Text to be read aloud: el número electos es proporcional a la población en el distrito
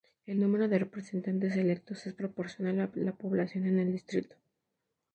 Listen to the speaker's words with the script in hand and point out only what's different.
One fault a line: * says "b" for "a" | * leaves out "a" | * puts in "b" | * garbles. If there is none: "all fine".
* puts in "de representantes"